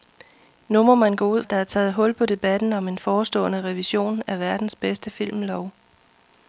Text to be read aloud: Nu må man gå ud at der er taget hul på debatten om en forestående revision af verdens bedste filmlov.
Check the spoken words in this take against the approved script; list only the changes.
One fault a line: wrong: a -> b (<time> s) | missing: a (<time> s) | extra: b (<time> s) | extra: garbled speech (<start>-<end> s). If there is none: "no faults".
no faults